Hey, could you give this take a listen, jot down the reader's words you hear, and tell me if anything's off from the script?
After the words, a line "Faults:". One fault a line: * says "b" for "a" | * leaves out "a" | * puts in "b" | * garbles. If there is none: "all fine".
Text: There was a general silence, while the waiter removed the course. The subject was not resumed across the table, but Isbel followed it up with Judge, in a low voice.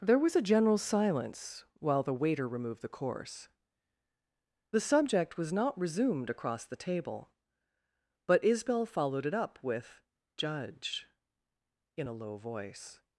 There was a general silence, while the waiter removed the course. The subject was not resumed across the table, but Isbel followed it up with Judge, in a low voice.
Faults:
all fine